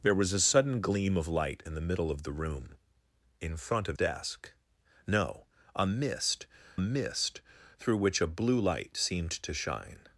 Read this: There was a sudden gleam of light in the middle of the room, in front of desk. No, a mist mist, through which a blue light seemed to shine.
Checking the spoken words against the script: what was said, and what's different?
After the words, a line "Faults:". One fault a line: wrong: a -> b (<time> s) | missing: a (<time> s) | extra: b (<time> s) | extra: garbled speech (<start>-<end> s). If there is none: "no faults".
There was a sudden gleam of light in the middle of the room, in front of desk. No, a mist mist, through which a blue light seemed to shine.
Faults:
no faults